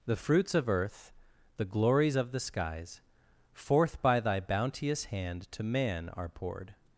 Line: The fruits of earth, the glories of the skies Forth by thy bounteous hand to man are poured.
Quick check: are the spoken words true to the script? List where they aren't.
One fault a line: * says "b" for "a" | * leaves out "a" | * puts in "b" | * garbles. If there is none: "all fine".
all fine